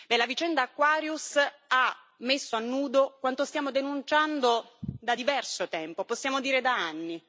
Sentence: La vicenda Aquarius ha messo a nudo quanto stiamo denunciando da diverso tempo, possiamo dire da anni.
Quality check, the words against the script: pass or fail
pass